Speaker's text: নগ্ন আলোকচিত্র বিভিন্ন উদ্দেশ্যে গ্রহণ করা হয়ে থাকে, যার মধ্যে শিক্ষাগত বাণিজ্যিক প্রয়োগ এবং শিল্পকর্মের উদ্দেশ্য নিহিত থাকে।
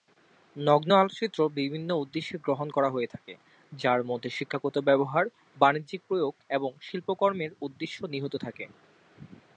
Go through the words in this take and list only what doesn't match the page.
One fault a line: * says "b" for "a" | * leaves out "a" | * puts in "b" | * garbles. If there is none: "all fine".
* puts in "ব্যবহার"